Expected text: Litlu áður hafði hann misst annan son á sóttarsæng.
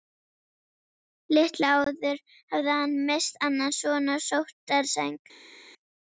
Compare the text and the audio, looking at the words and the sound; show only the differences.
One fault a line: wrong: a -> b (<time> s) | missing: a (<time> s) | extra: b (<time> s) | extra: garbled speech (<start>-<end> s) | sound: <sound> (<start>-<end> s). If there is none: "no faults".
no faults